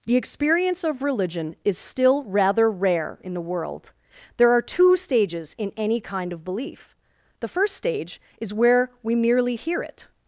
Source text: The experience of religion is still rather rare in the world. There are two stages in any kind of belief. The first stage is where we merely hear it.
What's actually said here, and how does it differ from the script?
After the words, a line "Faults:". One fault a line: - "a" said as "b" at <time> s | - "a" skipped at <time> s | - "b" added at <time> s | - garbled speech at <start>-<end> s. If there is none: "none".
The experience of religion is still rather rare in the world. There are two stages in any kind of belief. The first stage is where we merely hear it.
Faults:
none